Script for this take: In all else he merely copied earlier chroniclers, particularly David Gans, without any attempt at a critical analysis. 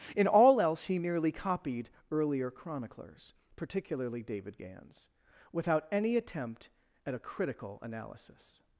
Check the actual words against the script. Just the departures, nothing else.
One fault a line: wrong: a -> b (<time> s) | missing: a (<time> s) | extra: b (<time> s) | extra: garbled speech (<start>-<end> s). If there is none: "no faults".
no faults